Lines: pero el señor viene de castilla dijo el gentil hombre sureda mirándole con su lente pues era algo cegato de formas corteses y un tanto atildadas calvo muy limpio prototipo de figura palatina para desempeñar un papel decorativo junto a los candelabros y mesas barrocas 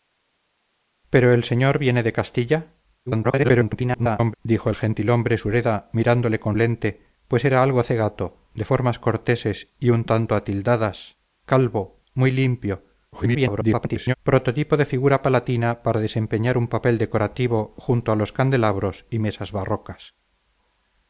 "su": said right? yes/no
no